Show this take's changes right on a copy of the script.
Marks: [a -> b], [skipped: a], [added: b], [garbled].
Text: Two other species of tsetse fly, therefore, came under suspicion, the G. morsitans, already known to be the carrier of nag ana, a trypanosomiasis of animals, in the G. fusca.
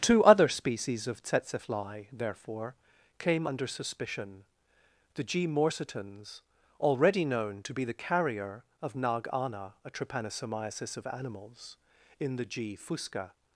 Two other species of tsetse fly, therefore, came under suspicion, the G. morsitans, already known to be the carrier of nag ana, a trypanosomiasis of animals, in the G. fusca.